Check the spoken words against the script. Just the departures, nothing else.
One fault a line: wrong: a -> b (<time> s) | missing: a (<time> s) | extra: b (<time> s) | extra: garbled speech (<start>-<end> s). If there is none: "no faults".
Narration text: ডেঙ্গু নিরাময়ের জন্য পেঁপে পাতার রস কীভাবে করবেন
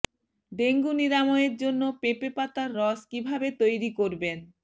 extra: তৈরি (3.6 s)